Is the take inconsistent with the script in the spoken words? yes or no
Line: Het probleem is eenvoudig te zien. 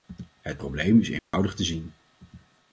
no